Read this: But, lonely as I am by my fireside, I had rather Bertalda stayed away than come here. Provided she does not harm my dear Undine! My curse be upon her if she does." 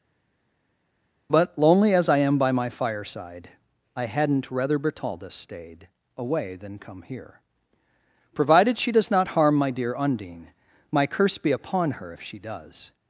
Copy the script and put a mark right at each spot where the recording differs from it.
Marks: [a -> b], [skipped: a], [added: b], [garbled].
But, lonely as I am by my fireside, I [had -> hadn't] rather Bertalda stayed away than come here. Provided she does not harm my dear Undine! My curse be upon her if she does."